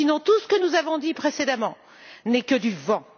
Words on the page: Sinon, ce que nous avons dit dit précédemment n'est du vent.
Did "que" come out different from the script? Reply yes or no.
no